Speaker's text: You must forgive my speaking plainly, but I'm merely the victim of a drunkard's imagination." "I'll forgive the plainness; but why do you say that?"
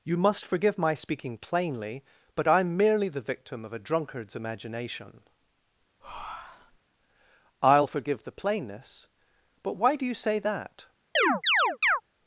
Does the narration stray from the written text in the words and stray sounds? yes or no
yes